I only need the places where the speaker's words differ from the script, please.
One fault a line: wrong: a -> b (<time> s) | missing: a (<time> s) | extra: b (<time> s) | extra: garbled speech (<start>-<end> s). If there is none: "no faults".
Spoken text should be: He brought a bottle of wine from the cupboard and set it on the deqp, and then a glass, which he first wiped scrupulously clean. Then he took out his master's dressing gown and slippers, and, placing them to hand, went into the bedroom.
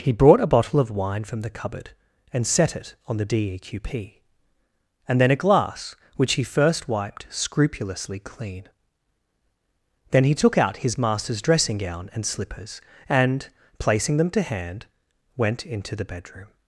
no faults